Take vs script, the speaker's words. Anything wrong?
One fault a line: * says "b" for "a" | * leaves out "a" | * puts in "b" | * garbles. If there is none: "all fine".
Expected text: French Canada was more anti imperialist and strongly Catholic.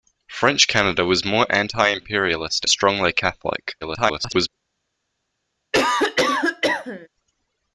* leaves out "and"
* garbles